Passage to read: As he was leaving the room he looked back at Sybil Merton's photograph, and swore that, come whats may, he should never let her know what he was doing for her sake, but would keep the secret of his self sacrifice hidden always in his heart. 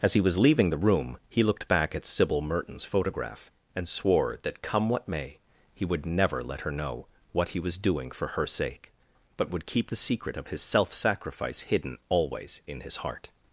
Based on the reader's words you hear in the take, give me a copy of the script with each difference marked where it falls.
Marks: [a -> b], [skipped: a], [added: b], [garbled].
As he was leaving the room he looked back at Sybil Merton's photograph, and swore that, come [whats -> what] may, he [should -> would] never let her know what he was doing for her sake, but would keep the secret of his self sacrifice hidden always in his heart.